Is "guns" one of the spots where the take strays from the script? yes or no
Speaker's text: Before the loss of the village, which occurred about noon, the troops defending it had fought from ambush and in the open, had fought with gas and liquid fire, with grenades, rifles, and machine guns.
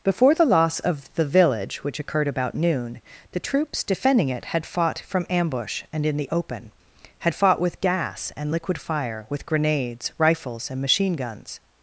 no